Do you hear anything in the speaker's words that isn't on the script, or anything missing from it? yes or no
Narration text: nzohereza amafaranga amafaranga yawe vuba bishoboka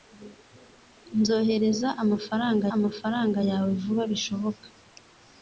no